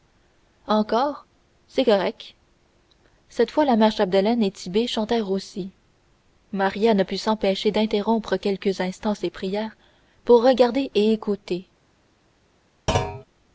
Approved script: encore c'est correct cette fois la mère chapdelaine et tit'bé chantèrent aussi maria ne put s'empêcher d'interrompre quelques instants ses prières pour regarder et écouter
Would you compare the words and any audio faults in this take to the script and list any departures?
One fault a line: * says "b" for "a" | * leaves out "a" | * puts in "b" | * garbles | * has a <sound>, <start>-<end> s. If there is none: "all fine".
* has a thud, 12.9-13.2 s